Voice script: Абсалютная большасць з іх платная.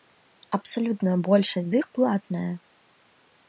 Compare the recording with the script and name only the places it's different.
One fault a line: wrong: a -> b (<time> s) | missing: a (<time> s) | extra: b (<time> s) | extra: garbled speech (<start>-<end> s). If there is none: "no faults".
no faults